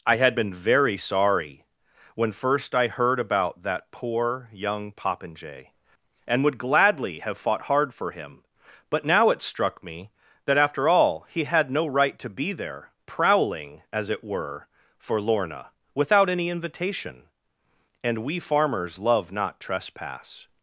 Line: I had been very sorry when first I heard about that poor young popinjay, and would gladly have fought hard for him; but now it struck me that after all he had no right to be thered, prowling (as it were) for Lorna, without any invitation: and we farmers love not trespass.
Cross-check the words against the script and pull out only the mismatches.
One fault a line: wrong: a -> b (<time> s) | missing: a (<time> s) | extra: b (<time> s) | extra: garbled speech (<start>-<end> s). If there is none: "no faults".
wrong: thered -> there (12.5 s)